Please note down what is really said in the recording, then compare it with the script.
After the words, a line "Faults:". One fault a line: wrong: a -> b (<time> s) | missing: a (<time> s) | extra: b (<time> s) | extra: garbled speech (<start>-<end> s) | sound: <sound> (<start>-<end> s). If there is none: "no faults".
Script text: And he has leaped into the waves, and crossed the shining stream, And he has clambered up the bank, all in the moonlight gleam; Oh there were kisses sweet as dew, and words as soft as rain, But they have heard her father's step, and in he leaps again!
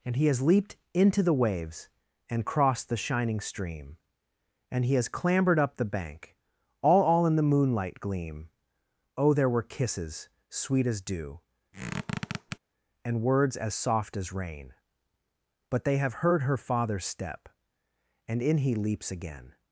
And he has leaped into the waves, and crossed the shining stream, And he has clambered up the bank, all all in the moonlight gleam; Oh there were kisses sweet as dew, and words as soft as rain, But they have heard her father's step, and in he leaps again!
Faults:
extra: all (7.0 s)
sound: squeak (11.7-12.6 s)